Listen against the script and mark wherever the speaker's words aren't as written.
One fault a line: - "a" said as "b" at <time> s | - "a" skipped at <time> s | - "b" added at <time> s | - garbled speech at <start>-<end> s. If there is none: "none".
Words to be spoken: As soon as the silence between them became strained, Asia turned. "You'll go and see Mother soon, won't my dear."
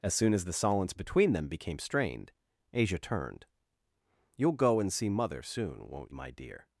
none